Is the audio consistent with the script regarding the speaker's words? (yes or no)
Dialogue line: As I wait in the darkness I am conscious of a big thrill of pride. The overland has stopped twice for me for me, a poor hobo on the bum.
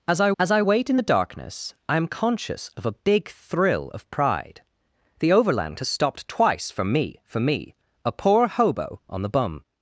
no